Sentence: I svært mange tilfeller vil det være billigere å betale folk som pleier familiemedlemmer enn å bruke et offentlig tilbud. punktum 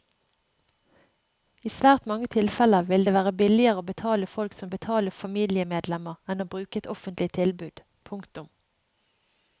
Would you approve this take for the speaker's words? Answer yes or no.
no